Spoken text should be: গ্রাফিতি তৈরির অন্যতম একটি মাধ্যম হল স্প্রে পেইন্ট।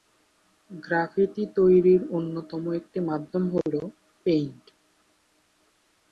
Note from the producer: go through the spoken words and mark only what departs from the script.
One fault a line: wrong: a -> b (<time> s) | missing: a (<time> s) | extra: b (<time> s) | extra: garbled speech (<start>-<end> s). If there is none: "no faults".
missing: স্প্রে (3.7 s)